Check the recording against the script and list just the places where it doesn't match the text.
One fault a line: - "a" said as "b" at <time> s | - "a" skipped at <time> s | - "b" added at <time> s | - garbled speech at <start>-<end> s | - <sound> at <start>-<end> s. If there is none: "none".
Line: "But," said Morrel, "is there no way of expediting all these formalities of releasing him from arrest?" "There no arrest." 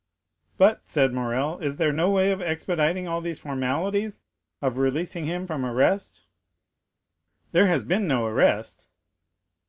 - "has been" added at 7.7 s